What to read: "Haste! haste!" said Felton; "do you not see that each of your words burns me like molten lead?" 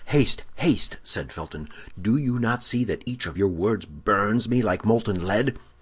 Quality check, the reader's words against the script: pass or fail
pass